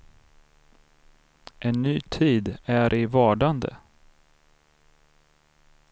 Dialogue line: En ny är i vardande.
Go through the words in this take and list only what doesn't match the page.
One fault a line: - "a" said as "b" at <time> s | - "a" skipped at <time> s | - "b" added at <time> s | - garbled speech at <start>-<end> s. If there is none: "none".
- "tid" added at 2.0 s